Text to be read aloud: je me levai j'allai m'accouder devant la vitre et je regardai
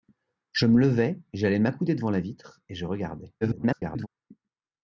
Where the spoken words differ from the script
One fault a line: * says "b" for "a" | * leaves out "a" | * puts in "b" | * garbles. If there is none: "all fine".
* garbles